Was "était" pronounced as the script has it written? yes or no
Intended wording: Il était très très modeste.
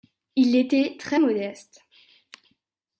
yes